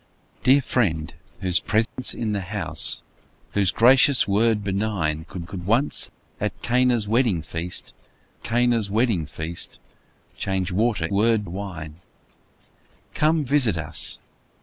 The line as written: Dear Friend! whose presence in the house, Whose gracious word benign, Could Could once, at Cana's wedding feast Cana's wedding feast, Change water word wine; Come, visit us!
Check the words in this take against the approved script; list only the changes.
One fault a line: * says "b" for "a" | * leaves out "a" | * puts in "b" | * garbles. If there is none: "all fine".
all fine